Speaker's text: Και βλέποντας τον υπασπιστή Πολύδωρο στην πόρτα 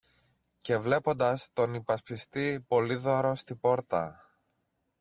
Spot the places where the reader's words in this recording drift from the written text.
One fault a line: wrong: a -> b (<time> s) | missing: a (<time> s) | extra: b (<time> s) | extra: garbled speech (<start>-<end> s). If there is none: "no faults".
no faults